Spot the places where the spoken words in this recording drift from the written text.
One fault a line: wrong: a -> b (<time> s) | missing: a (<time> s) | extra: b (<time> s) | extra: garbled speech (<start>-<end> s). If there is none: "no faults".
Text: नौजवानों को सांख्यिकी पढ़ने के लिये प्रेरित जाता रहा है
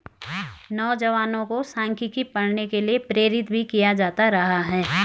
extra: भी किया (3.5 s)